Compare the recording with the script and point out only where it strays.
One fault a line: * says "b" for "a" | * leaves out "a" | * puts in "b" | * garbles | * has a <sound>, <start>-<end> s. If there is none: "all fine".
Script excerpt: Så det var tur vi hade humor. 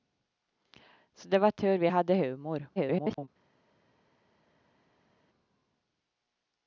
* garbles